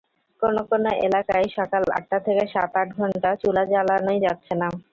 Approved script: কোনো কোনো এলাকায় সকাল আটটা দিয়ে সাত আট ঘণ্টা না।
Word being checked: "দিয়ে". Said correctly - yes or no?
no